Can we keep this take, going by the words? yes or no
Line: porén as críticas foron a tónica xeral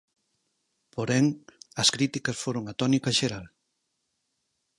yes